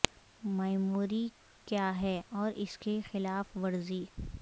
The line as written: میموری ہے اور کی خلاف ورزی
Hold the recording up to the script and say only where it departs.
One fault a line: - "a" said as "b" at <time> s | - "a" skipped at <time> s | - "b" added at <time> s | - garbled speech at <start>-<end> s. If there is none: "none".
- "کیا" added at 1.7 s
- "اس" added at 2.6 s